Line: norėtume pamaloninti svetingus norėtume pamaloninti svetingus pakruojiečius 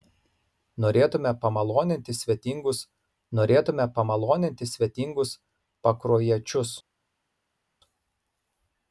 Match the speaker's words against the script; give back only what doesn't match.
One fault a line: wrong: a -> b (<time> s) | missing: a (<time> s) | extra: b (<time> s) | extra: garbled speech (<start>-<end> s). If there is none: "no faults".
no faults